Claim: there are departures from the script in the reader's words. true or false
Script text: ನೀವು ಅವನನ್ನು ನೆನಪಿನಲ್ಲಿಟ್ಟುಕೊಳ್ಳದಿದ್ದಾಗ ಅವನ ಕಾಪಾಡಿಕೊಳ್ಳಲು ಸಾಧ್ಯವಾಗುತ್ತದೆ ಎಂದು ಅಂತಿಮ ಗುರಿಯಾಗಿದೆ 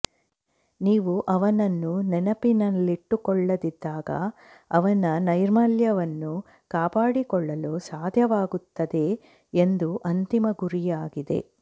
true